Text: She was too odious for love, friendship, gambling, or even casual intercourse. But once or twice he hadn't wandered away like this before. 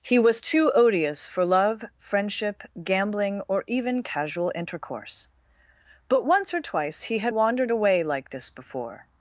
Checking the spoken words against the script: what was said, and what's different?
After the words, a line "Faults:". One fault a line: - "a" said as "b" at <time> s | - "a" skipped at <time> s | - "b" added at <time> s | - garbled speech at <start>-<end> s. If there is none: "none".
He was too odious for love, friendship, gambling, or even casual intercourse. But once or twice he had wandered away like this before.
Faults:
- "She" said as "He" at 0.0 s
- "hadn't" said as "had" at 7.2 s